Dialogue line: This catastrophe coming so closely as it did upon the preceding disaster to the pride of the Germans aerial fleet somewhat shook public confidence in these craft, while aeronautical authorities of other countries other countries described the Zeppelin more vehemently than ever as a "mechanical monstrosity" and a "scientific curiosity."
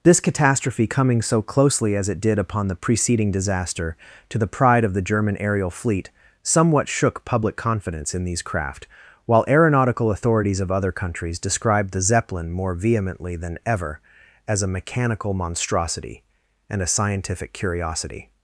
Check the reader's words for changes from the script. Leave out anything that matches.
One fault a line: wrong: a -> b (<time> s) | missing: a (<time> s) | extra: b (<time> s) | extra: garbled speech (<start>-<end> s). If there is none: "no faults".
wrong: Germans -> German (5.0 s)
missing: other countries (11.4 s)